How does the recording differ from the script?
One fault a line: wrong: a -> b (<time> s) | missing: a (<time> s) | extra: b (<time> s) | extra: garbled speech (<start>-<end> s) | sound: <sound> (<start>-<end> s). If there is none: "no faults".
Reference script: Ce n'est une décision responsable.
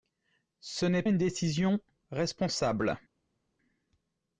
no faults